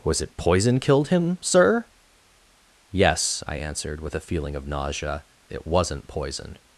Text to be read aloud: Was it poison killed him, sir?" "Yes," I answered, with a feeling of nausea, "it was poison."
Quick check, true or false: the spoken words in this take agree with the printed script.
false